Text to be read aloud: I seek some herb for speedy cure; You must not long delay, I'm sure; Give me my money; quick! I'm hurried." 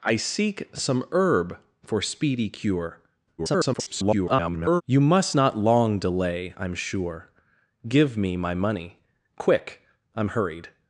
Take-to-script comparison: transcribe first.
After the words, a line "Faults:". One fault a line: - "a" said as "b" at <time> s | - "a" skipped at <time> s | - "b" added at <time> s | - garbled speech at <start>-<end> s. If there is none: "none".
I seek some herb for speedy cure; [garbled] You must not long delay, I'm sure; Give me my money; quick! I'm hurried."
Faults:
- garbled speech at 3.4-4.8 s